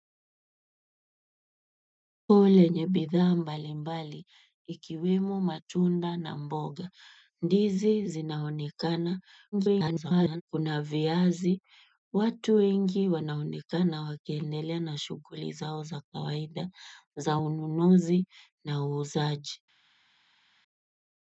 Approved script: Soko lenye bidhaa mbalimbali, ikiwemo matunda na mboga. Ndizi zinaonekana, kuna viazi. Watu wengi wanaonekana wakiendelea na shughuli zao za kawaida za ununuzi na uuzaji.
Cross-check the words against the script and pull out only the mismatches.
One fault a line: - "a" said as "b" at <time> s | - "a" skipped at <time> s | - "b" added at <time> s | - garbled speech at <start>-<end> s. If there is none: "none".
- garbled speech at 9.5-10.4 s